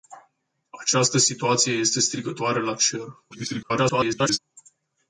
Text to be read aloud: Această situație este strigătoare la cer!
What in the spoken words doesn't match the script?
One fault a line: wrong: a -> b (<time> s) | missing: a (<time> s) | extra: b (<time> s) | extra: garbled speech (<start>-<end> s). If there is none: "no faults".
extra: garbled speech (3.3-4.4 s)